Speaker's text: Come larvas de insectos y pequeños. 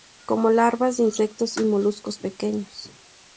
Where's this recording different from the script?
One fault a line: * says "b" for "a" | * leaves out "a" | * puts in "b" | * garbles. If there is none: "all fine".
* puts in "moluscos"